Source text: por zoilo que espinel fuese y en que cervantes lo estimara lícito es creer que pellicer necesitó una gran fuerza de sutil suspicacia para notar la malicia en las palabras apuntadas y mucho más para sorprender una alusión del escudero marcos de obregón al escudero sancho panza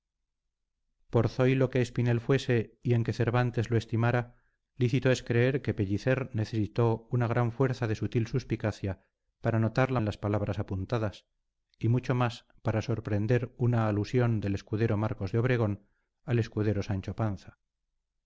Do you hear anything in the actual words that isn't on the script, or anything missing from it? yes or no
yes